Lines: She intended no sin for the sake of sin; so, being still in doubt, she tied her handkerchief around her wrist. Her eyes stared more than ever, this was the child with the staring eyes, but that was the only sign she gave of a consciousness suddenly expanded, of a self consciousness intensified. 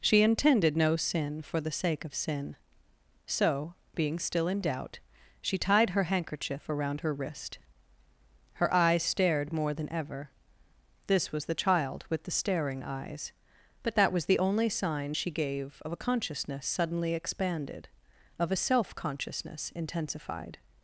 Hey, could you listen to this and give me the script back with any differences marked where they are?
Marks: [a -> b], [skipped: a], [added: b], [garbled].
She intended no sin for the sake of sin; so, being still in doubt, she tied her handkerchief around her wrist. Her eyes stared more than ever, this was the child with the staring eyes, but that was the only sign she gave of a consciousness suddenly expanded, of a self consciousness intensified.